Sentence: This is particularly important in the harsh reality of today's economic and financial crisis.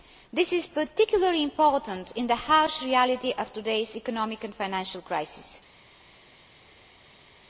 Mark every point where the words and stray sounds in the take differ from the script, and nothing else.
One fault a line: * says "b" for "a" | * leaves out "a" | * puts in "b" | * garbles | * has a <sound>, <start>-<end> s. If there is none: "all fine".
all fine